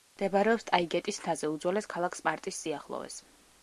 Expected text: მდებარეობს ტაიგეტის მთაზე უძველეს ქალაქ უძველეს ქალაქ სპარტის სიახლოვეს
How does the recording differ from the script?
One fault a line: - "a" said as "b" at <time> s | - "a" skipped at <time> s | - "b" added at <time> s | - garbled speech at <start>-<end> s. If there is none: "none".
- "უძველეს ქალაქ" skipped at 2.2 s